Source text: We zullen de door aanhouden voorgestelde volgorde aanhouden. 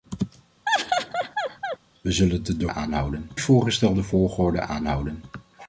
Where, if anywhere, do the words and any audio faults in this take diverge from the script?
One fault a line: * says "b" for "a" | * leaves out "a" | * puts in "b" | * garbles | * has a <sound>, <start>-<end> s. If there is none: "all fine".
* has a laugh, 0.7-1.8 s